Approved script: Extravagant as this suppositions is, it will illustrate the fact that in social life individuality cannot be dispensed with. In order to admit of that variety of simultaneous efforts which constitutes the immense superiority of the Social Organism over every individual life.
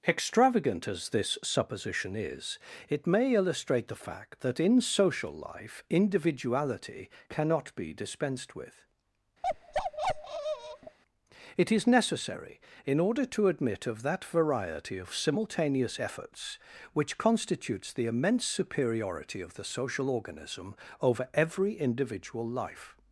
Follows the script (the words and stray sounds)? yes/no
no